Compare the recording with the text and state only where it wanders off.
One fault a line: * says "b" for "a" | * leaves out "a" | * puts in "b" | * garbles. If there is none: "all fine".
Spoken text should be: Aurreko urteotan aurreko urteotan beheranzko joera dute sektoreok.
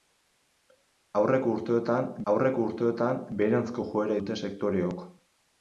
all fine